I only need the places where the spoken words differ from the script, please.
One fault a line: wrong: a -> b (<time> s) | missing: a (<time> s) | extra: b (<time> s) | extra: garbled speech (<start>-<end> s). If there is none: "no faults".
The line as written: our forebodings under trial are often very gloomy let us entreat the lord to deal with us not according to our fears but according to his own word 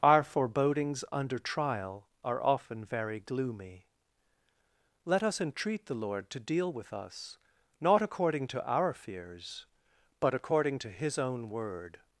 no faults